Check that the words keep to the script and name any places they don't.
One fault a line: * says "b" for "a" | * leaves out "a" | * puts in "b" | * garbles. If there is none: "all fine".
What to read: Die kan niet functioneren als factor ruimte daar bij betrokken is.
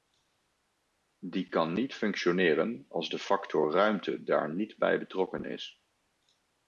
* puts in "de"
* puts in "niet"